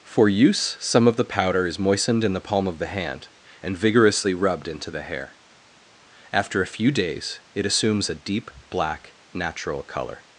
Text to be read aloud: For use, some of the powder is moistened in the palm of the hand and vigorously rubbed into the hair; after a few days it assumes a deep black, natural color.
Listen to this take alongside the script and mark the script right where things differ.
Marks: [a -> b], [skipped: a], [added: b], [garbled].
For use, some of the powder is moistened in the palm of the hand and vigorously rubbed into the hair; after a few days it assumes a deep black, natural color.